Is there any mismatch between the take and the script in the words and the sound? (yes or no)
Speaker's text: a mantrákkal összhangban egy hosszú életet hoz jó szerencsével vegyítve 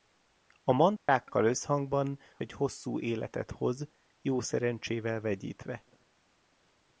yes